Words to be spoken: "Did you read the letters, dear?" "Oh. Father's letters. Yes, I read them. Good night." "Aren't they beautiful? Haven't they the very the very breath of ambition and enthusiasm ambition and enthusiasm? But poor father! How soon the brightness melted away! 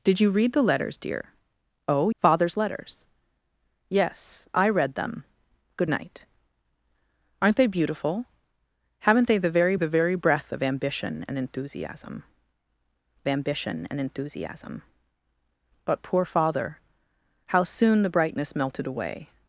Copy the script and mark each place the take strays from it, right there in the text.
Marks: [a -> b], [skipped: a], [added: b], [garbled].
"Did you read the letters, dear?" "Oh. Father's letters. Yes, I read them. Good night." "Aren't they beautiful? Haven't they the very the very breath of ambition and enthusiasm ambition and enthusiasm? But poor father! How soon the brightness melted away!